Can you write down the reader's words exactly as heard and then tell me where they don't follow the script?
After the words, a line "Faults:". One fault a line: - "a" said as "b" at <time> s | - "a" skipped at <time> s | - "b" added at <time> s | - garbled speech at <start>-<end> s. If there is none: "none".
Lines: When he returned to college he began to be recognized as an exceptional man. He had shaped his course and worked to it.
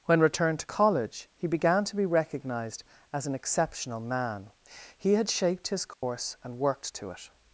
When returned to college he began to be recognized as an exceptional man. He had shaped his course and worked to it.
Faults:
- "he" skipped at 0.2 s